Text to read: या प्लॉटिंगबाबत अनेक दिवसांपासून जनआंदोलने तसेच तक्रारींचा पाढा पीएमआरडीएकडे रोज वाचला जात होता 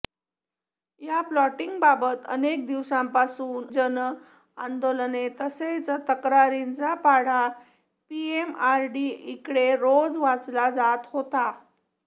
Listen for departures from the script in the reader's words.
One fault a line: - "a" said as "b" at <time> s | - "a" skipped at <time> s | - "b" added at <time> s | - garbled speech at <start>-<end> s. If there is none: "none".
none